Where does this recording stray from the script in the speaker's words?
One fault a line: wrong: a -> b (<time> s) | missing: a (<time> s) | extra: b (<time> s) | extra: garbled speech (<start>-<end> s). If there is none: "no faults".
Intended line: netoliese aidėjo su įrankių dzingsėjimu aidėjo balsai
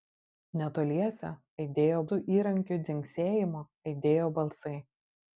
no faults